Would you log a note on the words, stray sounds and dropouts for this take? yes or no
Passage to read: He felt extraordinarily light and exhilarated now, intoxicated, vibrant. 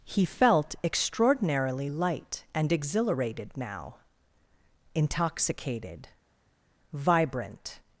no